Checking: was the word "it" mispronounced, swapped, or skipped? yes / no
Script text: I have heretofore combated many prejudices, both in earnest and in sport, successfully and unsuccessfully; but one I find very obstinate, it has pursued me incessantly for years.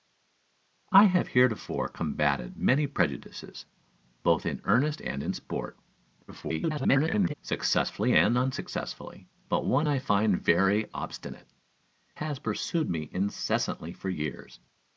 yes